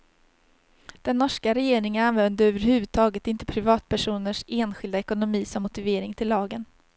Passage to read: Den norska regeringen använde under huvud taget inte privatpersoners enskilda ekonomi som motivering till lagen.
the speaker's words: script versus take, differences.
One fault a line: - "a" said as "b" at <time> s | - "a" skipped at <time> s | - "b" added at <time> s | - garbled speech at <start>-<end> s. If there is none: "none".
- "under" said as "över" at 2.5 s